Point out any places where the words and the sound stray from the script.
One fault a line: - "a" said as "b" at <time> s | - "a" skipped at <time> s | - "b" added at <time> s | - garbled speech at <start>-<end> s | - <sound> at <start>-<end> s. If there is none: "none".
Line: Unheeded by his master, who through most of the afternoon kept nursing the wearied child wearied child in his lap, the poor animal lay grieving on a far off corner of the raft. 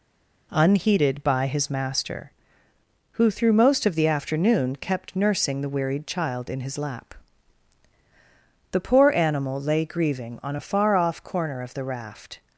- "wearied child" skipped at 6.5 s